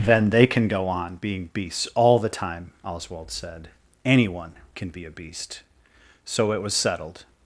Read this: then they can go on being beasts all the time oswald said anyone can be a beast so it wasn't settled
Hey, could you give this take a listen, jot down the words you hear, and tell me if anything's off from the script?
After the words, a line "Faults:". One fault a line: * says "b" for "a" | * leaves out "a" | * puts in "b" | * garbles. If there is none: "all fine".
then they can go on being beasts all the time oswald said anyone can be a beast so it was settled
Faults:
* says "was" for "wasn't"